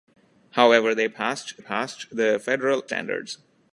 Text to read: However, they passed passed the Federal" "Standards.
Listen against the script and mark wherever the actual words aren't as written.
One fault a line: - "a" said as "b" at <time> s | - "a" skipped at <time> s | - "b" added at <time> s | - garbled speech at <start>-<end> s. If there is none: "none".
none